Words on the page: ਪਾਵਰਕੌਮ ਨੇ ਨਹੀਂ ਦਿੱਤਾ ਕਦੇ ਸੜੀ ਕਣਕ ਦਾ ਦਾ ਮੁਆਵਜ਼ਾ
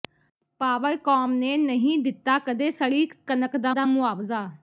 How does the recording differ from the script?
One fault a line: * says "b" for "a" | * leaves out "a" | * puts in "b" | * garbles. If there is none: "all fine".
all fine